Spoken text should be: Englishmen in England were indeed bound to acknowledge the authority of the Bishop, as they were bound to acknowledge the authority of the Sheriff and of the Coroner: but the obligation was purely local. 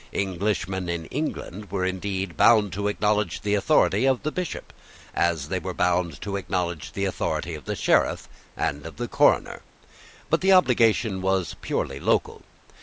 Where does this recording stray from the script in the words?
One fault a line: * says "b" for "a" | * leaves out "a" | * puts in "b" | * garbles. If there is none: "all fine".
all fine